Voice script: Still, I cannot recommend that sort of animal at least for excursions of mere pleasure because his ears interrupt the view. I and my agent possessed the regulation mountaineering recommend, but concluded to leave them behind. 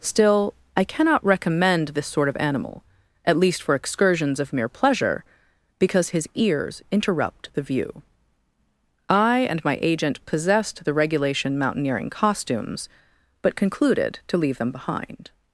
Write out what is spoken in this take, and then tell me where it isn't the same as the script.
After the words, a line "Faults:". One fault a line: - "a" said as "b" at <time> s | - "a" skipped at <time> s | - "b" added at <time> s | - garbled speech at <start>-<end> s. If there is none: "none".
Still, I cannot recommend this sort of animal at least for excursions of mere pleasure because his ears interrupt the view. I and my agent possessed the regulation mountaineering costumes, but concluded to leave them behind.
Faults:
- "that" said as "this" at 1.9 s
- "recommend" said as "costumes" at 12.1 s